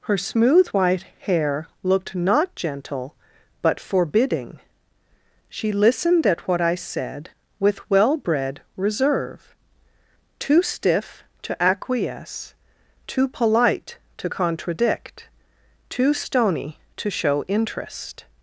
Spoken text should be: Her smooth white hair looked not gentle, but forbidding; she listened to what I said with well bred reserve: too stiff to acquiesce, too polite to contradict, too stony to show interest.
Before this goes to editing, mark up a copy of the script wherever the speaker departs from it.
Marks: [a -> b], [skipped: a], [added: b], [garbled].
Her smooth white hair looked not gentle, but forbidding; she listened [to -> at] what I said with well bred reserve: too stiff to acquiesce, too polite to contradict, too stony to show interest.